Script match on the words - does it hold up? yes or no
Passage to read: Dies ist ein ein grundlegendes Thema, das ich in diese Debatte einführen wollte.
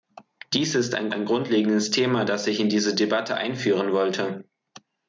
yes